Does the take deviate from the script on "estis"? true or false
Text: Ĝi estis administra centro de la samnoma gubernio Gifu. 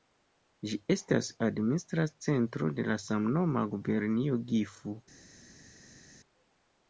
true